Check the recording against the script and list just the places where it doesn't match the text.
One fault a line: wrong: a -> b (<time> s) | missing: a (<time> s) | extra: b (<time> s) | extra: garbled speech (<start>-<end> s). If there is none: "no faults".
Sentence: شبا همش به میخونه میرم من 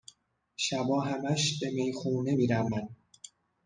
no faults